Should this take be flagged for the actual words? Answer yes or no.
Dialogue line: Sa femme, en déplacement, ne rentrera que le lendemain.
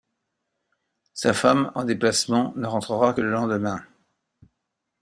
no